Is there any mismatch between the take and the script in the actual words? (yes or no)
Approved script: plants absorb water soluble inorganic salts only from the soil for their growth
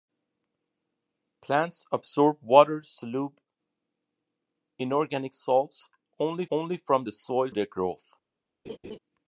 yes